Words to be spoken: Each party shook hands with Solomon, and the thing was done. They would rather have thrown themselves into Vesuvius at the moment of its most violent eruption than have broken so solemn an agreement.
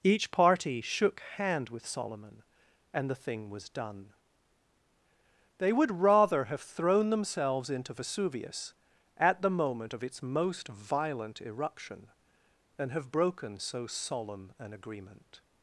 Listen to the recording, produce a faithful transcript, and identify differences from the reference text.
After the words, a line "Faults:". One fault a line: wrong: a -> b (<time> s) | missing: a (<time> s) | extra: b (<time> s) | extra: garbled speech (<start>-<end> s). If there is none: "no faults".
Each party shook hand with Solomon, and the thing was done. They would rather have thrown themselves into Vesuvius at the moment of its most violent eruption than have broken so solemn an agreement.
Faults:
wrong: hands -> hand (1.4 s)